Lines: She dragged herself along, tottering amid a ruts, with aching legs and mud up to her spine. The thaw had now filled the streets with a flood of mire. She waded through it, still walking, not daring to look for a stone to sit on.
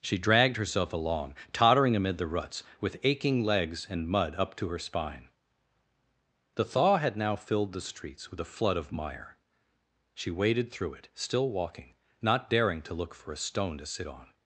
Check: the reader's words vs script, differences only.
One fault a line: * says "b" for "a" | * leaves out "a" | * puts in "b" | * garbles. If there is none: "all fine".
* says "the" for "a"